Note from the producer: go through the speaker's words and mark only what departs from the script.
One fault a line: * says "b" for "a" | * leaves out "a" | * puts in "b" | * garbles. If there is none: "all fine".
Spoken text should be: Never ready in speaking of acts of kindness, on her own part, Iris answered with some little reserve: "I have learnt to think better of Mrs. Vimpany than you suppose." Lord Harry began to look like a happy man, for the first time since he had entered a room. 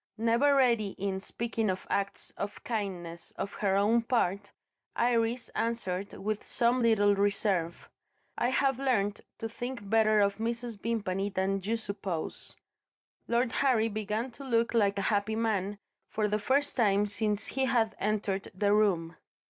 * says "the" for "a"